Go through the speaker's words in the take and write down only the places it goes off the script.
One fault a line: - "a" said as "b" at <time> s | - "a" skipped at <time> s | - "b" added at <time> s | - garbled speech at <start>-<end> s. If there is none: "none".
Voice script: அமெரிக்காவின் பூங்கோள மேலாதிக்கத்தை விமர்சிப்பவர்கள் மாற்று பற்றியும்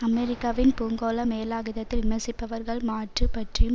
none